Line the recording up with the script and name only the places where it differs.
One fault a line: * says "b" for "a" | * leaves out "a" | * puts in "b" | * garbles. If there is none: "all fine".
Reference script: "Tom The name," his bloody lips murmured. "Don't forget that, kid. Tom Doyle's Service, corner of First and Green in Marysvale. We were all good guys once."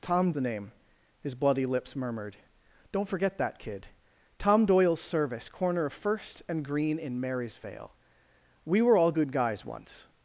all fine